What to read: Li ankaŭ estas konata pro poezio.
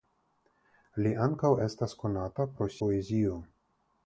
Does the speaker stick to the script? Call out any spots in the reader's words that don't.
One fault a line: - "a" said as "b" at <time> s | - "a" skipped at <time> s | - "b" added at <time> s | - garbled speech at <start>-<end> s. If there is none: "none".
none